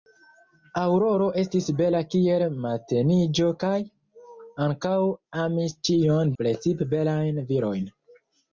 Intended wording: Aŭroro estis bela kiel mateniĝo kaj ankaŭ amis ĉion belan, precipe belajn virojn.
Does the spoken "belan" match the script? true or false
false